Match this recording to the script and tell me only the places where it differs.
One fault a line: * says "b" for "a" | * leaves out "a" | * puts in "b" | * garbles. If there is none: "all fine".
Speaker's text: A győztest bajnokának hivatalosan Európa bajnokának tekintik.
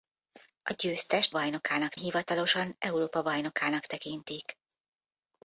all fine